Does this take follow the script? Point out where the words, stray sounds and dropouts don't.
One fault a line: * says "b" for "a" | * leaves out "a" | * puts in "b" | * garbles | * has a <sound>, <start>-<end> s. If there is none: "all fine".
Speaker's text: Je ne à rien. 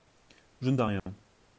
* has a dropout, 1.0-1.1 s